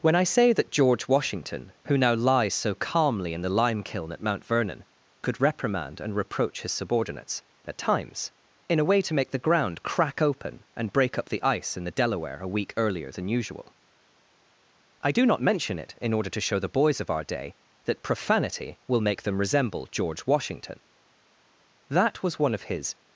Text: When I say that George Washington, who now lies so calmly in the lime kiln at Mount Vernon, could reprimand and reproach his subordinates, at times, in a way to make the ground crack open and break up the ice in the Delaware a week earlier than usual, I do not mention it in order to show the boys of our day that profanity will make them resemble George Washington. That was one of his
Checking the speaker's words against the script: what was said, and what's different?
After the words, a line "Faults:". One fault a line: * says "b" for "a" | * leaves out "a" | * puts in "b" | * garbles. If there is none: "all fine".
When I say that George Washington, who now lies so calmly in the lime kiln at Mount Vernon, could reprimand and reproach his subordinates, at times, in a way to make the ground crack open and break up the ice in the Delaware a week earlier than usual, I do not mention it in order to show the boys of our day that profanity will make them resemble George Washington. That was one of his
Faults:
all fine